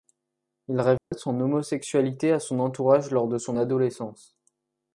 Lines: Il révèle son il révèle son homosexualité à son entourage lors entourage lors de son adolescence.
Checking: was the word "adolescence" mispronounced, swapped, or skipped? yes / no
no